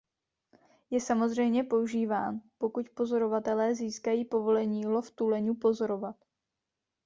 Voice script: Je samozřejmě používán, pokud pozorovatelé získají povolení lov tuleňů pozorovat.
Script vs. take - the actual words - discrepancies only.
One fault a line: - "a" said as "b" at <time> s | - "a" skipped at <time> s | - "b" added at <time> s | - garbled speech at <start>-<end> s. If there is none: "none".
none